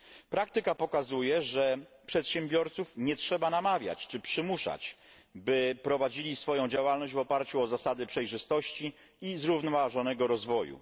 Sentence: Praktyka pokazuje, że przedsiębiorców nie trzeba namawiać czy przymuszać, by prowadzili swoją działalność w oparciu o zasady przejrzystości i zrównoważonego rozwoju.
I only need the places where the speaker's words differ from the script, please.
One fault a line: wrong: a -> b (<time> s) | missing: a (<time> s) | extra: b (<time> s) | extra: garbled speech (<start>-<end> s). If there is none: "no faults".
no faults